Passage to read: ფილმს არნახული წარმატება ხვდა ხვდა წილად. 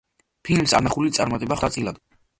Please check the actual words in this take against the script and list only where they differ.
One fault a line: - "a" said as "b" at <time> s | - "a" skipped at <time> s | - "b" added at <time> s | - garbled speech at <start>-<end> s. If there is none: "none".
- "ხვდა" skipped at 1.7 s